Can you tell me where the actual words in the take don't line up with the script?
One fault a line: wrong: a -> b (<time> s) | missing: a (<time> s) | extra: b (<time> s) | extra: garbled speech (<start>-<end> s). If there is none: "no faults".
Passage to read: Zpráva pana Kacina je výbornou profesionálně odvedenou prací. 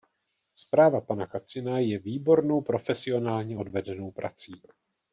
no faults